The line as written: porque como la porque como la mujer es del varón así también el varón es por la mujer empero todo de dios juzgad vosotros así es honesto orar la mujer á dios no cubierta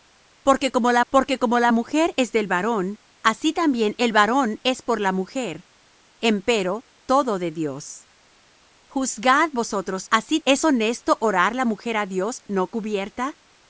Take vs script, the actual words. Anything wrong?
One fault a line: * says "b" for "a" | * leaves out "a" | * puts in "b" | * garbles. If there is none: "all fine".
all fine